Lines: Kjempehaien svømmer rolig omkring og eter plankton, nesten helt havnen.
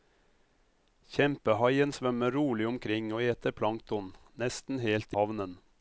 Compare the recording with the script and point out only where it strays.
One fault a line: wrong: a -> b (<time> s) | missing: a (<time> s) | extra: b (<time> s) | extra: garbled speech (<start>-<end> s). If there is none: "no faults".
no faults